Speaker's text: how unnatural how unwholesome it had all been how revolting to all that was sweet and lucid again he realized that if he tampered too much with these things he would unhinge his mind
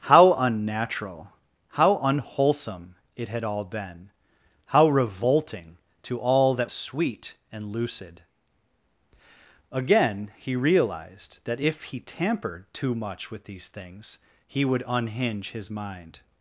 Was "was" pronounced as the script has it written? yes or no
no